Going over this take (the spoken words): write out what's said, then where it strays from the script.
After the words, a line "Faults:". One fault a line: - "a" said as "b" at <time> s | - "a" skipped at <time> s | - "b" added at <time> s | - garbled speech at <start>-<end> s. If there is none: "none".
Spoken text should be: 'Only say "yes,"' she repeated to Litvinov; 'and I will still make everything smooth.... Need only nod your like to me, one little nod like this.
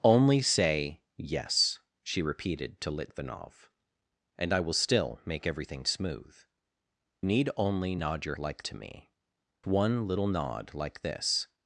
'Only say "yes,"' she repeated to Litvinov; 'and I will still make everything smooth.... Need only nod your like to me, one little nod like this.
Faults:
none